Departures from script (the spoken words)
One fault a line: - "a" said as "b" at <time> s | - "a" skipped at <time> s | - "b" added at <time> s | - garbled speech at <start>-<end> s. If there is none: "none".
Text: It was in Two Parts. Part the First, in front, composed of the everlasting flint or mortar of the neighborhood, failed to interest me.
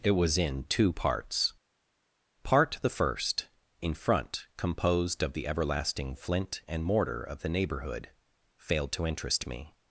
- "or" said as "and" at 6.7 s